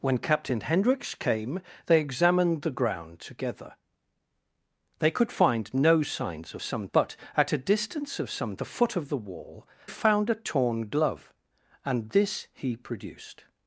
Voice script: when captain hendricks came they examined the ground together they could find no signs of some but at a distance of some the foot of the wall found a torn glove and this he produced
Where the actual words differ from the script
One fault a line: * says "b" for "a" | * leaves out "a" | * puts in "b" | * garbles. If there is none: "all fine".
all fine